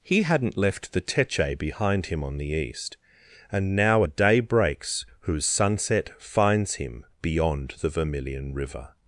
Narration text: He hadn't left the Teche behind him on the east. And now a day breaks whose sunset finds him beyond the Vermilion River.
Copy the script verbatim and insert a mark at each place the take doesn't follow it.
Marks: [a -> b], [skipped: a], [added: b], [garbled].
He hadn't left the Teche behind him on the east. And now a day breaks whose sunset finds him beyond the Vermilion River.